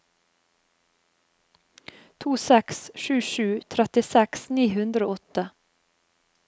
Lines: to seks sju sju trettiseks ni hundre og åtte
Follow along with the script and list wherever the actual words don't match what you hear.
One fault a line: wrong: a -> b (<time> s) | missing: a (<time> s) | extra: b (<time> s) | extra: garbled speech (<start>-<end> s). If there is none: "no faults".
no faults